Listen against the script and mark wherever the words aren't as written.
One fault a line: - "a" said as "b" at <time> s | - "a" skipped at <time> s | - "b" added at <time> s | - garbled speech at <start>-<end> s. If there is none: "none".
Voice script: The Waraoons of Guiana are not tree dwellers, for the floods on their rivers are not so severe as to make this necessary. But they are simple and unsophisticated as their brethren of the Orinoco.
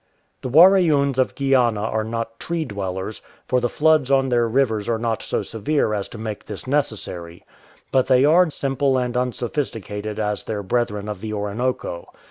none